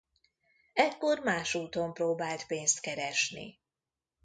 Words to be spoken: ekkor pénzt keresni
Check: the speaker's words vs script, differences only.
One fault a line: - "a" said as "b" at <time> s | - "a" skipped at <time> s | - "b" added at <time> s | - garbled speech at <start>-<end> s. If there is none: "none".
- "más úton próbált" added at 1.2 s